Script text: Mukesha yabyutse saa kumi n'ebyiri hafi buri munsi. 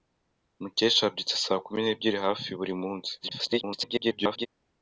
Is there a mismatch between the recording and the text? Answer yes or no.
yes